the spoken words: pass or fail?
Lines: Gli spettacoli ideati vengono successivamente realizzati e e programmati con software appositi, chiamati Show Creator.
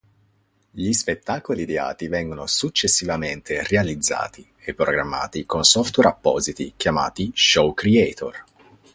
fail